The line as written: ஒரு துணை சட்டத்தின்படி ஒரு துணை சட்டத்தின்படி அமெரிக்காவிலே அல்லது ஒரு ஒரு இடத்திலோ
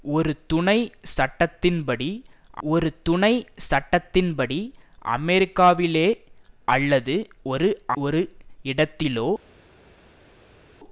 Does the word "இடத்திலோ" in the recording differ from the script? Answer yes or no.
no